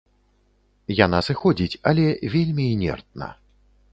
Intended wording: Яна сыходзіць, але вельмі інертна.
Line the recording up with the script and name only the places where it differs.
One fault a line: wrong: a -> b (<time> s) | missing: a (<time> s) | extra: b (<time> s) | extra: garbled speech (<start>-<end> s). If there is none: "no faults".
no faults